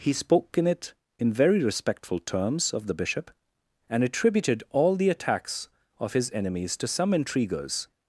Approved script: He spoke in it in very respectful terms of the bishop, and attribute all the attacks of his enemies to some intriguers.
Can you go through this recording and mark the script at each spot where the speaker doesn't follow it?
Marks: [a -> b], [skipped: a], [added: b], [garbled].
He spoke in it in very respectful terms of the bishop, and [attribute -> attributed] all the attacks of his enemies to some intriguers.